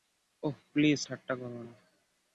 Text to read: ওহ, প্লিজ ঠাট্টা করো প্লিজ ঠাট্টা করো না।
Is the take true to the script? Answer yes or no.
no